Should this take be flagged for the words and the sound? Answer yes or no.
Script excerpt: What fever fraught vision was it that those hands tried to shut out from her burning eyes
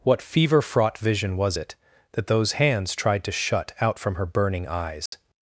yes